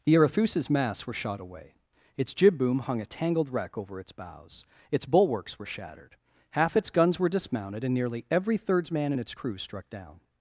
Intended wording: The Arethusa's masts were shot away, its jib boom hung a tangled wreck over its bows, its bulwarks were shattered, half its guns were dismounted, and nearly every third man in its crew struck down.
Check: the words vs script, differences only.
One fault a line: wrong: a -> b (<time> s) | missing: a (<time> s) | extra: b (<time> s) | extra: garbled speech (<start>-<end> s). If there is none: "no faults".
wrong: third -> thirds (8.6 s)